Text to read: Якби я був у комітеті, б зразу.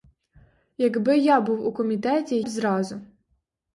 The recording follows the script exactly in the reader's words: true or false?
true